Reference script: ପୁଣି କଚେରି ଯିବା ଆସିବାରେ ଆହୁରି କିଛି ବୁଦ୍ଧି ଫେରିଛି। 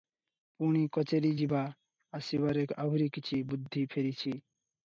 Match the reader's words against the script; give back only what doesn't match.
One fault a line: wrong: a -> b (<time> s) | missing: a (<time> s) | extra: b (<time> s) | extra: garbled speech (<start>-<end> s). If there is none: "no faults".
no faults